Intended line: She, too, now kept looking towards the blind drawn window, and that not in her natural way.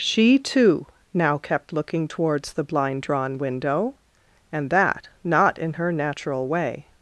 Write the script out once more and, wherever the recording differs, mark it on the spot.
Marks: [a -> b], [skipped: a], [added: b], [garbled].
She, too, now kept looking towards the blind drawn window, and that not in her natural way.